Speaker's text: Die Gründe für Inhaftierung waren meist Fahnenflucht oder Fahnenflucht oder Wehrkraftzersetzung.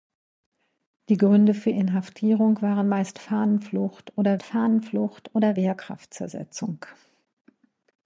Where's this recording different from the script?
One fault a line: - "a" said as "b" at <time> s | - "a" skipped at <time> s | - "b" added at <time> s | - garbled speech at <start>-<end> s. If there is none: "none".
none